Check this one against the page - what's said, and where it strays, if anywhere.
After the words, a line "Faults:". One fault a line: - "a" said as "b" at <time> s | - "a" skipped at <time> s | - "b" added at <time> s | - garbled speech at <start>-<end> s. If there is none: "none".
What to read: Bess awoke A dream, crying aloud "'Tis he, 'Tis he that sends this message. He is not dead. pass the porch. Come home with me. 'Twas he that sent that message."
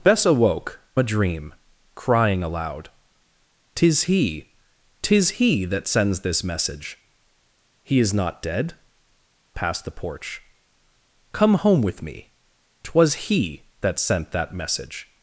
Bess awoke A dream, crying aloud "'Tis he, 'Tis he that sends this message. He is not dead. pass the porch. Come home with me. 'Twas he that sent that message."
Faults:
none